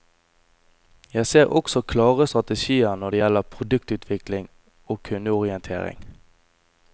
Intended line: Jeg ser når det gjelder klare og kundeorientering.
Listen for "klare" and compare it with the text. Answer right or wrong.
wrong